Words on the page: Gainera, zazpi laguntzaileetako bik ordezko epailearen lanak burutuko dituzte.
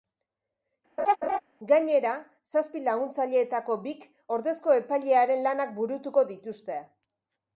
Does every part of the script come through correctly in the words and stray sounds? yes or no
no